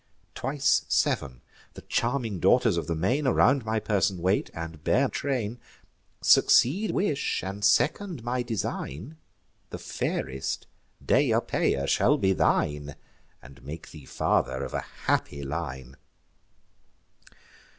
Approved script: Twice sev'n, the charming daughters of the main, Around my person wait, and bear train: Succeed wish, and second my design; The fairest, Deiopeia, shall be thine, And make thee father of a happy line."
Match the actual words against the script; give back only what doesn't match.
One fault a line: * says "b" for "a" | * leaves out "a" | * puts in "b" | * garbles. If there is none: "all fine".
all fine